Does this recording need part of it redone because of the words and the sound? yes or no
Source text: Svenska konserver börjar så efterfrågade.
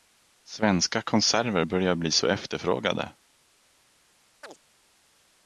yes